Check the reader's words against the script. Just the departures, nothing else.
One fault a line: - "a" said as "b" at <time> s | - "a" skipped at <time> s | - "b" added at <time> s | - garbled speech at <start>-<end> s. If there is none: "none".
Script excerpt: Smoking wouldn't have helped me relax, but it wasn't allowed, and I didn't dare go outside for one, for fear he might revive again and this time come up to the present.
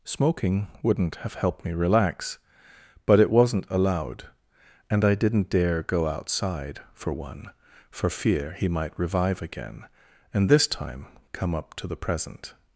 none